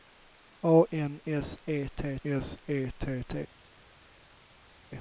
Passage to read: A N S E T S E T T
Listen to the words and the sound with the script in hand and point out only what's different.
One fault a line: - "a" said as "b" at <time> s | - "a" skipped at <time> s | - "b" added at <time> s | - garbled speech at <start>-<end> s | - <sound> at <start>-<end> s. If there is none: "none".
none